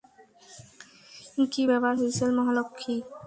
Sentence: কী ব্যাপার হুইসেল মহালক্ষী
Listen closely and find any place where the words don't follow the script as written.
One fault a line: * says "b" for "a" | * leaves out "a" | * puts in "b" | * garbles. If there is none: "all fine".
all fine